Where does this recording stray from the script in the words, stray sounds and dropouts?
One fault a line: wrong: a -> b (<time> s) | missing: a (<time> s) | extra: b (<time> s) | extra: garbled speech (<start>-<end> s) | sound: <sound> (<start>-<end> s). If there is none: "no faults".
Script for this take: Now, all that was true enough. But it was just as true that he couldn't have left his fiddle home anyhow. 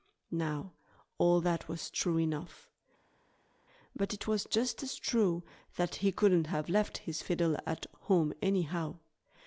extra: at (7.6 s)